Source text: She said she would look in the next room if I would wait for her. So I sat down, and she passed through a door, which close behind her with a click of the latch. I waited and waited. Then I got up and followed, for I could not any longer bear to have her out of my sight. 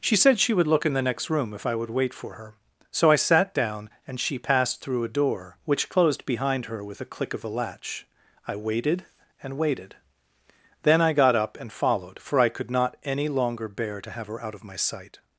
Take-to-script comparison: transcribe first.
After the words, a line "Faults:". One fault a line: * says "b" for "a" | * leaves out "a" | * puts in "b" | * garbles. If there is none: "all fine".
She said she would look in the next room if I would wait for her. So I sat down, and she passed through a door, which closed behind her with a click of the latch. I waited and waited. Then I got up and followed, for I could not any longer bear to have her out of my sight.
Faults:
* says "closed" for "close"